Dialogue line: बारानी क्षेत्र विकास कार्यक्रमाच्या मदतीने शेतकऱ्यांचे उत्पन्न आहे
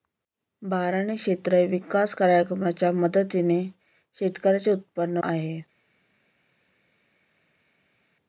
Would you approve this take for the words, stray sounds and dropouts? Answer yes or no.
yes